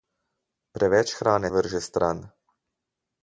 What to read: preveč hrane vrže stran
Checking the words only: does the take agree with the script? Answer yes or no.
yes